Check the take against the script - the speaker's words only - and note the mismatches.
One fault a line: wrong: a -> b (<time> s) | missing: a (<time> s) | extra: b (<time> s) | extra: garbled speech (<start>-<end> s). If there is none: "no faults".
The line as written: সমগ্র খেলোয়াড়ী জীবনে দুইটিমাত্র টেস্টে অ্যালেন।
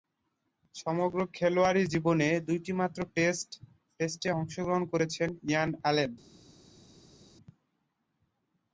extra: অংশগ্রহণ করেছেন ইয়ান (4.4 s)